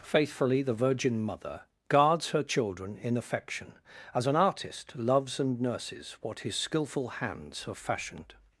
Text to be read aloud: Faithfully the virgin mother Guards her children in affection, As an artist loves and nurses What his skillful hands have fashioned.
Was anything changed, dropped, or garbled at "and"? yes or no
no